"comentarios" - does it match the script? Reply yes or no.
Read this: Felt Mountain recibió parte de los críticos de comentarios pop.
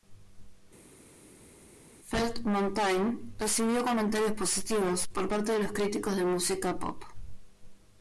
no